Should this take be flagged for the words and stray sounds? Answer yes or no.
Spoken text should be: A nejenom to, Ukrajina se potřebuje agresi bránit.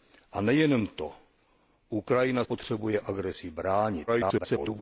yes